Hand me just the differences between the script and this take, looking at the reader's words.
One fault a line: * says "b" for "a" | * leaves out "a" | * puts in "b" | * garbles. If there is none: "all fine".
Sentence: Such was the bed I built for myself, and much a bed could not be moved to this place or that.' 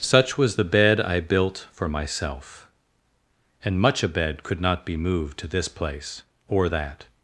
all fine